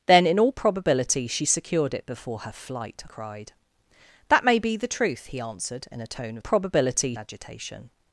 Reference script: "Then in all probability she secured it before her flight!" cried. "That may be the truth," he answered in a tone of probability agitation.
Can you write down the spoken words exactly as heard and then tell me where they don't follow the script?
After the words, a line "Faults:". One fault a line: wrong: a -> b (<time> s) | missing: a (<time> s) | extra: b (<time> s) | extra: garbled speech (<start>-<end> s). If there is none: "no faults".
"Then in all probability she secured it before her flight!" cried. "That may be the truth," he answered in a tone of probability agitation.
Faults:
no faults